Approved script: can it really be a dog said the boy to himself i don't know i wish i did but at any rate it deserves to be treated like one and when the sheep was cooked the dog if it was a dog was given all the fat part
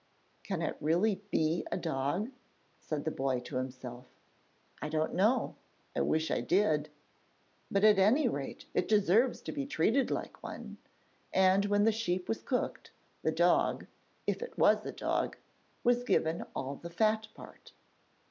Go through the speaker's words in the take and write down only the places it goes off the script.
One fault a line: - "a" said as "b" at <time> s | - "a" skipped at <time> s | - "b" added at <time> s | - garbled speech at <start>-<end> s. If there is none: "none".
none